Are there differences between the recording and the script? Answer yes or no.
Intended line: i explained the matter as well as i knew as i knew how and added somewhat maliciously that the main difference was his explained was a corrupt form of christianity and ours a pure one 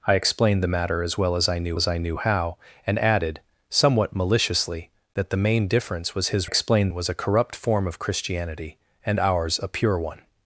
no